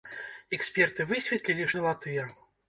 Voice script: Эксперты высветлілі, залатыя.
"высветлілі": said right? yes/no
yes